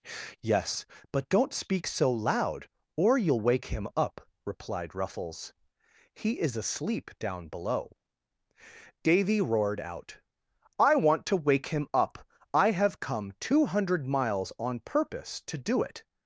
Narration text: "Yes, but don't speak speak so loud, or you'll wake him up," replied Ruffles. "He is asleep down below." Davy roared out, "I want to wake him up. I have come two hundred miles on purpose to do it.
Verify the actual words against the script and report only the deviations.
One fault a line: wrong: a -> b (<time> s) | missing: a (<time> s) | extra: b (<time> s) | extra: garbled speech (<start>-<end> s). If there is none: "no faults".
missing: speak (1.9 s)